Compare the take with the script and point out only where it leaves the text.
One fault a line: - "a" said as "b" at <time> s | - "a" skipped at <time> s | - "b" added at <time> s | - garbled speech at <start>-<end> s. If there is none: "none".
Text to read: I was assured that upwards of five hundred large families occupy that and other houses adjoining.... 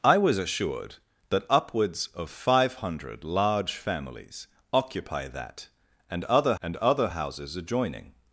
- "and other" added at 6.6 s